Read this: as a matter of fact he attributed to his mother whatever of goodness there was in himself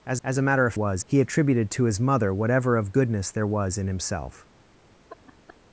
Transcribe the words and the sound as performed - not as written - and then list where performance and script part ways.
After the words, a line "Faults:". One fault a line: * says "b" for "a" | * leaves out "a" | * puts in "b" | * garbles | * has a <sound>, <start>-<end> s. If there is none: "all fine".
as as a matter of was he attributed to his mother whatever of goodness there was in himself
Faults:
* puts in "as"
* says "was" for "fact"
* has a laugh, 5.1-5.6 s